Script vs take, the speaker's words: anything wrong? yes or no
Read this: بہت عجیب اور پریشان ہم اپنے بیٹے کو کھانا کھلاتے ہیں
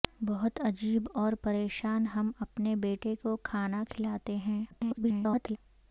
yes